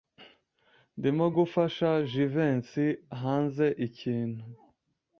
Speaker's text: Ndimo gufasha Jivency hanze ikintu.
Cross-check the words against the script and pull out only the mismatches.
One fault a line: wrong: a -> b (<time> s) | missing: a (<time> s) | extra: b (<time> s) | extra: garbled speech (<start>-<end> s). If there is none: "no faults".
no faults